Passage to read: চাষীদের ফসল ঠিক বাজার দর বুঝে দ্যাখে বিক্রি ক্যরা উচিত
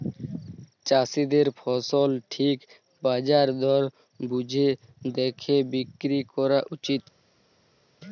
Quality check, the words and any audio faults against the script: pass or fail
pass